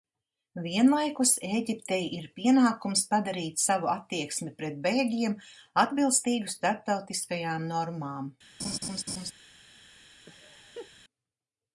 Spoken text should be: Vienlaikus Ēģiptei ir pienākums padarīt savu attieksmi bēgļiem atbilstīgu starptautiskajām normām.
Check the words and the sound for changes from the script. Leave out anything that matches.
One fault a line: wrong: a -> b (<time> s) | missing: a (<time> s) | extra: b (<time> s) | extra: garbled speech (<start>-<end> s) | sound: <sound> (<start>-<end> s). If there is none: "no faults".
extra: pret (4.6 s)
sound: laugh (8.6-9.3 s)
sound: laugh (10.3-10.9 s)